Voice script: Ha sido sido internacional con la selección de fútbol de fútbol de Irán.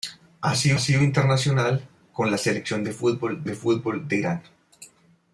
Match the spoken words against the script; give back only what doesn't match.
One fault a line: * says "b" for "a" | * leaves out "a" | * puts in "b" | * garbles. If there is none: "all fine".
all fine